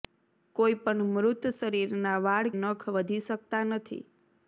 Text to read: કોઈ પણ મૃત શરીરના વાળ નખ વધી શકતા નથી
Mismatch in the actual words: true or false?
false